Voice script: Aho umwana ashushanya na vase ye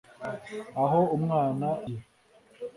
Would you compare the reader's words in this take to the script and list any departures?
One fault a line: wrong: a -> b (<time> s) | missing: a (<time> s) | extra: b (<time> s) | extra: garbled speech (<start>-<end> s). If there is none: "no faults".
missing: ashushanya na vase (1.7 s)